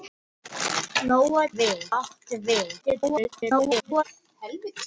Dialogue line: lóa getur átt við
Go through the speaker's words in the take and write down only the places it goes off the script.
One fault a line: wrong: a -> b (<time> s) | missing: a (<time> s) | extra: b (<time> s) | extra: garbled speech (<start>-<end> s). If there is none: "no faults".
wrong: getur -> við (1.6 s)
extra: garbled speech (2.8-4.0 s)